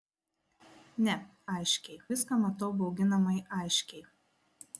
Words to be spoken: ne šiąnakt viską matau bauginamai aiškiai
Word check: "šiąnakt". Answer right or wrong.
wrong